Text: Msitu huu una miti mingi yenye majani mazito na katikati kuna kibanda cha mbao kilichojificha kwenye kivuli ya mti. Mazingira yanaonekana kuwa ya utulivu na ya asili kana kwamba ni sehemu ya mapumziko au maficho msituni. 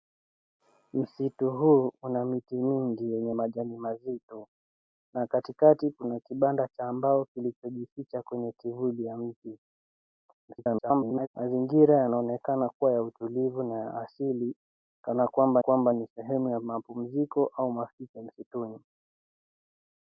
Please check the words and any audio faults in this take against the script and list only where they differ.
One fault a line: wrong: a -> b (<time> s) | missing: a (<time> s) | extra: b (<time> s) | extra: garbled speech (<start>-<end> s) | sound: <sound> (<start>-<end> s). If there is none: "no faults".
extra: garbled speech (10.5-11.3 s)
extra: kwamba (15.6 s)